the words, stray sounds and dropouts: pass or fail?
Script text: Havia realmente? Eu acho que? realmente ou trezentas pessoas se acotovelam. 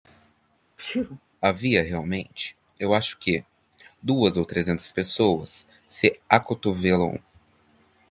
fail